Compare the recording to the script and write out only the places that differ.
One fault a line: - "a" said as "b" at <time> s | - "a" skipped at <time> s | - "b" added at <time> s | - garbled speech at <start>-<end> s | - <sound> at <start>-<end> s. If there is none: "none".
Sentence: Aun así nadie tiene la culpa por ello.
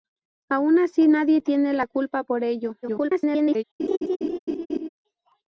- garbled speech at 2.8-3.6 s
- laugh at 3.8-4.9 s